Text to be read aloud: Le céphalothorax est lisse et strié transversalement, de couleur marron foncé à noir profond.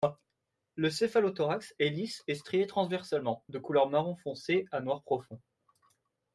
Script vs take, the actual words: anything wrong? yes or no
no